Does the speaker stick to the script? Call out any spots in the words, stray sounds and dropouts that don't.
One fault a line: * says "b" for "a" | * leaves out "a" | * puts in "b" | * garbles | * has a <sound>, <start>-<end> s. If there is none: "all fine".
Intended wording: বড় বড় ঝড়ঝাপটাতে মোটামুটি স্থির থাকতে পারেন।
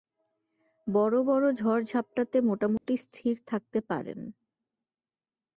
* has a dropout, 2.8-2.9 s